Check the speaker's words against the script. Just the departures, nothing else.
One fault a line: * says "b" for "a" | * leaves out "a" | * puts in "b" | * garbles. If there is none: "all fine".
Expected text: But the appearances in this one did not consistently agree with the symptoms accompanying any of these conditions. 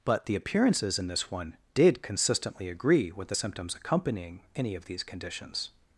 * leaves out "not"